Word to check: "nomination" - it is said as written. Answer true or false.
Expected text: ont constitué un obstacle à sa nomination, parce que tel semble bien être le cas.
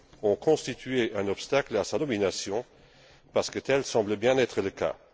true